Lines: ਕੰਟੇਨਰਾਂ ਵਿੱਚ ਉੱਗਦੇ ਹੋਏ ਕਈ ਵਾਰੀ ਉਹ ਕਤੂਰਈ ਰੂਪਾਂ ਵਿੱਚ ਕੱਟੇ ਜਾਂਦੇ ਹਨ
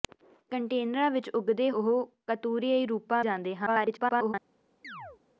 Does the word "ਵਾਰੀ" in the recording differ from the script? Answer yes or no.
yes